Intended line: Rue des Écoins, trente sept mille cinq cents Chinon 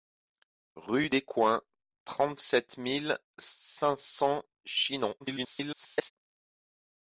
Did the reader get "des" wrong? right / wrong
wrong